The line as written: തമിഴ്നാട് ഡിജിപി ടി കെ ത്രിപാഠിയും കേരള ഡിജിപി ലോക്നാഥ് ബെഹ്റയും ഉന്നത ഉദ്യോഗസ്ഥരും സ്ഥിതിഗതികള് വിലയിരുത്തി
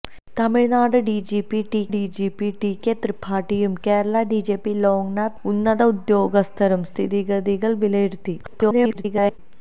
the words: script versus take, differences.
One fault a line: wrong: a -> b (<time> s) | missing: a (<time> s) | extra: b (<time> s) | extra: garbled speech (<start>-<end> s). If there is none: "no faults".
extra: ഡിജിപി ടി (1.9 s)
missing: ബെഹ്റയും (5.4 s)
extra: garbled speech (8.4-9.4 s)